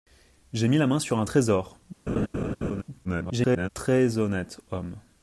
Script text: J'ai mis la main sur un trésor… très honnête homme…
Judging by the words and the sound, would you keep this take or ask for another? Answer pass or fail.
fail